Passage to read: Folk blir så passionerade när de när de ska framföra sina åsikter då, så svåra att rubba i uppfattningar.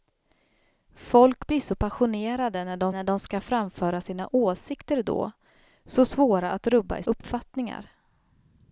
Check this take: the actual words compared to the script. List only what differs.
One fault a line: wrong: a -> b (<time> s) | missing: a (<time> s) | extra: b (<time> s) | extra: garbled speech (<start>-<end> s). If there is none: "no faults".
no faults